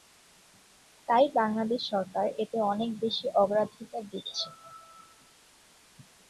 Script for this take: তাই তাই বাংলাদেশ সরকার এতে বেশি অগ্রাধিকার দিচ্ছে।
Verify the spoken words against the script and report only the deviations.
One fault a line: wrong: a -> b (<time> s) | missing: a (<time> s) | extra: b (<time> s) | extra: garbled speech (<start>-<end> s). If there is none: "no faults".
missing: তাই (1.2 s)
extra: অনেক (2.7 s)